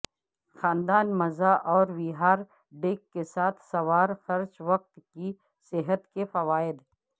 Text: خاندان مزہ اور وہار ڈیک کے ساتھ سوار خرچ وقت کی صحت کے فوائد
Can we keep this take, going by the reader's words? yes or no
yes